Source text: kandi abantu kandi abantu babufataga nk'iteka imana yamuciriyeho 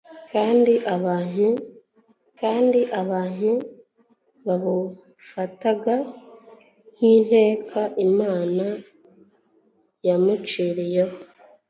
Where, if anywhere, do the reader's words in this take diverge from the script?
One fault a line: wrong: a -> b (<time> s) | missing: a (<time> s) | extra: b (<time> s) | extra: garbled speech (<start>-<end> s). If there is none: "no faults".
no faults